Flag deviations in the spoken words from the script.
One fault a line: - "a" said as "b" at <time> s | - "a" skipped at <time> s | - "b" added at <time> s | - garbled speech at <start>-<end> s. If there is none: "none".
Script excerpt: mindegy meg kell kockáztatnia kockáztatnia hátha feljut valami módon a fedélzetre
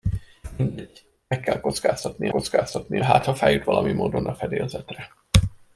none